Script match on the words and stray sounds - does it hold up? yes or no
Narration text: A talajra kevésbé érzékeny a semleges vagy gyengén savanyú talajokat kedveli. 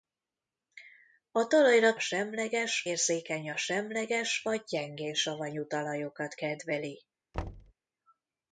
no